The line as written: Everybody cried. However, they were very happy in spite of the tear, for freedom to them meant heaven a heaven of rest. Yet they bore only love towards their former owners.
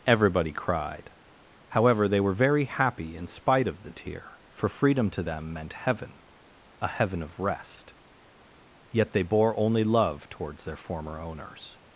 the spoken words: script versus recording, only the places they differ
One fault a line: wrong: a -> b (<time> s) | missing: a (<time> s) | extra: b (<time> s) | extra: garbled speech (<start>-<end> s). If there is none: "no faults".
no faults